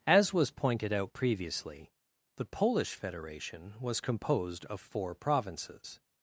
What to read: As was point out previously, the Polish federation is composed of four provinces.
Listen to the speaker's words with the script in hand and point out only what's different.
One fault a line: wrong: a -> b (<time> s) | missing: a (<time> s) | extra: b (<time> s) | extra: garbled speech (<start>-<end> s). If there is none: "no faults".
wrong: point -> pointed (0.5 s)
wrong: is -> was (3.8 s)